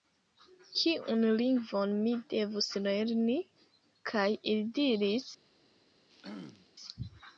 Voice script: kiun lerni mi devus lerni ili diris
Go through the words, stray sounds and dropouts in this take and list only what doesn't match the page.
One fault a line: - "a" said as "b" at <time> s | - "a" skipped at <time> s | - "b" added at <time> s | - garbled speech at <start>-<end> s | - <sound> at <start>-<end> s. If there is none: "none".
- "lerni" said as "lingvon" at 1.4 s
- "kaj" added at 4.1 s
- throat clearing at 6.1-6.7 s